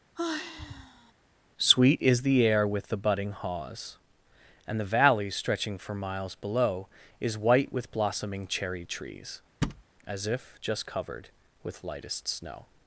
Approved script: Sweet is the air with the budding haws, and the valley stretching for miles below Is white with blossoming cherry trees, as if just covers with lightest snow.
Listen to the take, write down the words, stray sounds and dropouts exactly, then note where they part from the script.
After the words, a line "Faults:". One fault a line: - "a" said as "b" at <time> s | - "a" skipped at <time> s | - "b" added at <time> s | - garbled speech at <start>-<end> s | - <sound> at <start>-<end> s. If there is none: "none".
Sweet is the air with the budding haws, and the valley stretching for miles below Is white with blossoming cherry trees, as if just covered with lightest snow.
Faults:
- sigh at 0.1-1.1 s
- thud at 9.6-9.8 s
- "covers" said as "covered" at 10.8 s